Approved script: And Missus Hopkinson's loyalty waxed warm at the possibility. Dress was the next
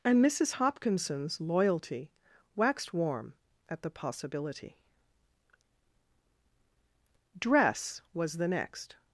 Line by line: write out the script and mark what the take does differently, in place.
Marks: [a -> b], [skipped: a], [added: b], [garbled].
And Missus Hopkinson's loyalty waxed warm at the possibility. Dress was the next